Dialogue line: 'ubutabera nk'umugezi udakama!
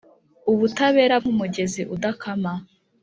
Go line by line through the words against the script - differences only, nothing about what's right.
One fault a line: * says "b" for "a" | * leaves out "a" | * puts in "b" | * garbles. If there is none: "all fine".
all fine